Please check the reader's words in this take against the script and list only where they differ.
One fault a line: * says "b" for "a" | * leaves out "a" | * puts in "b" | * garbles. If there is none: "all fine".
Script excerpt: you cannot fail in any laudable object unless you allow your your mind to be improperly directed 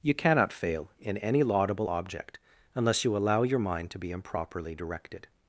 * leaves out "your"